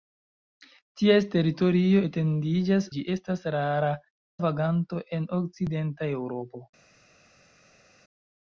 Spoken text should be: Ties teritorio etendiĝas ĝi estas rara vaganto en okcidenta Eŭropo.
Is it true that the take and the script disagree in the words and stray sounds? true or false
false